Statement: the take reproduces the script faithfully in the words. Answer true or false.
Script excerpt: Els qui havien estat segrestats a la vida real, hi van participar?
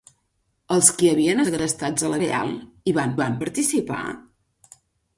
false